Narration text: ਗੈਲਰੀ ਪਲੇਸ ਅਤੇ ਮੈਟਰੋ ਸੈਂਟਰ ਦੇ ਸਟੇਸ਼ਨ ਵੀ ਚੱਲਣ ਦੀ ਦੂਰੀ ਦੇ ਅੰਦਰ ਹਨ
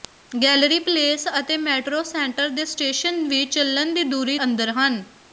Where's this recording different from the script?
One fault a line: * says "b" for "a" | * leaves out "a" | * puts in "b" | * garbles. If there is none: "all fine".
* leaves out "ਦੇ"